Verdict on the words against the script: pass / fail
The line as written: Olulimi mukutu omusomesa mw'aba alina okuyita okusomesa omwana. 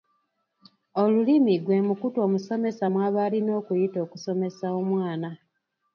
fail